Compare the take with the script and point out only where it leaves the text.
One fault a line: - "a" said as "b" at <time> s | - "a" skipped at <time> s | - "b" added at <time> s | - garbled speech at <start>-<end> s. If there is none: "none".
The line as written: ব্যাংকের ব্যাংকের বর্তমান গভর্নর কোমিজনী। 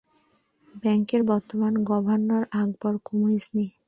- "ব্যাংকের" skipped at 1.2 s
- "আকবর" added at 2.5 s